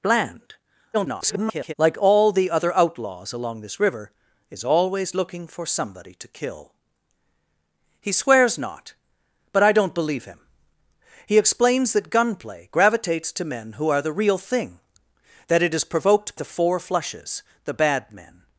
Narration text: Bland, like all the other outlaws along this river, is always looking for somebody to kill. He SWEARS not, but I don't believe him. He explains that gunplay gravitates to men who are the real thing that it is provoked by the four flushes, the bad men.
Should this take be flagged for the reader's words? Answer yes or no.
yes